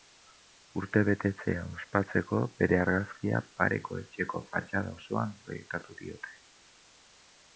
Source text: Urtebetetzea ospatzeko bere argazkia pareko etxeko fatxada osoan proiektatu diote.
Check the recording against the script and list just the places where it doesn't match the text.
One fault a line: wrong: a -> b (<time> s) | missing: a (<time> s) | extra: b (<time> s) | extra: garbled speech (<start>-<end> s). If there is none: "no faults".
no faults